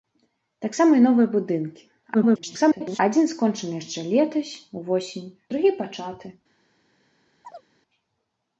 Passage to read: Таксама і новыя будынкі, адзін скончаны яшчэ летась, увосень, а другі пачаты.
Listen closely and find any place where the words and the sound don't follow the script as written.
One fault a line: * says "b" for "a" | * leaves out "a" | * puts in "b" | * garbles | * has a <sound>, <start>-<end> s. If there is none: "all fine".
* garbles
* leaves out "а"
* has a chirp, 7.4-7.7 s